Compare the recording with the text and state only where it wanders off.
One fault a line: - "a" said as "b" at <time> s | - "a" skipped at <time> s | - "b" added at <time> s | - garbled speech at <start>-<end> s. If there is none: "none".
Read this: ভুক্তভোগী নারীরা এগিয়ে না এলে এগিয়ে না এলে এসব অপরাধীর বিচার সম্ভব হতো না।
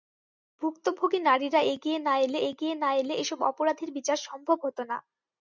none